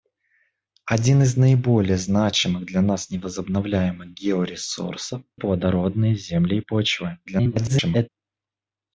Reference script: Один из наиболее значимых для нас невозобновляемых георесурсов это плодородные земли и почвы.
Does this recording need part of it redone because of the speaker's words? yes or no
yes